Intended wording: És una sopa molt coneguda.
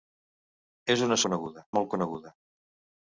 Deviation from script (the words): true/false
true